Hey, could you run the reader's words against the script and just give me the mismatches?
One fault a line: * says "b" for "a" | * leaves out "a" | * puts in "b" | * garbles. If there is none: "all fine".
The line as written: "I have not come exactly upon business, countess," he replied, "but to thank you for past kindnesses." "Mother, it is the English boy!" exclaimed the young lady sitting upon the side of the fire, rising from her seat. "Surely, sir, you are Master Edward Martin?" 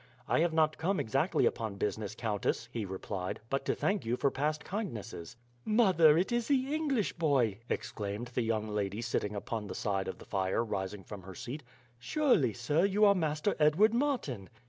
all fine